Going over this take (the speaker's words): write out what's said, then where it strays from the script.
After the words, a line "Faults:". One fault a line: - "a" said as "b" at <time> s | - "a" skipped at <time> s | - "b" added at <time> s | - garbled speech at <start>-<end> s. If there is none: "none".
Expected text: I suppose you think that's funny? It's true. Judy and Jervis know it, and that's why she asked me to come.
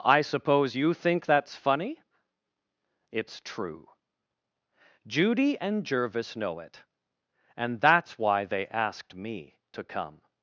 I suppose you think that's funny? It's true. Judy and Jervis know it, and that's why they asked me to come.
Faults:
- "she" said as "they" at 8.4 s